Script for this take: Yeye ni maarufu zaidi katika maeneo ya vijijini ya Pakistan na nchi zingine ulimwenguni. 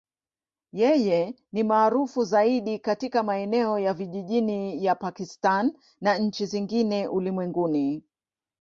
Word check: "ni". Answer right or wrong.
right